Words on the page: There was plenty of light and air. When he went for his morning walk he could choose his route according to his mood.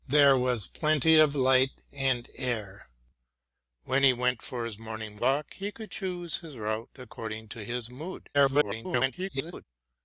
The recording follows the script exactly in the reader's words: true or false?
false